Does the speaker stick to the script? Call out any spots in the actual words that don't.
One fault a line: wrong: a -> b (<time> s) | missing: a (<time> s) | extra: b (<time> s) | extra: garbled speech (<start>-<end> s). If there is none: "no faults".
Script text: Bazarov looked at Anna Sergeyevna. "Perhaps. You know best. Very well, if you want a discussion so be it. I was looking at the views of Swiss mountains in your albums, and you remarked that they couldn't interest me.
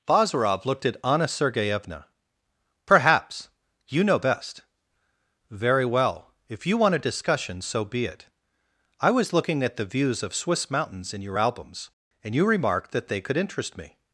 wrong: couldn't -> could (13.2 s)